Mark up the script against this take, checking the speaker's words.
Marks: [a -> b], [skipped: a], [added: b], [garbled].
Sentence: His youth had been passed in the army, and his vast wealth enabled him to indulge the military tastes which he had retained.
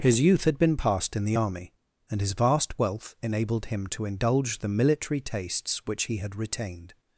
His youth had been passed in the army, and his vast wealth enabled him to indulge the military tastes which he had retained.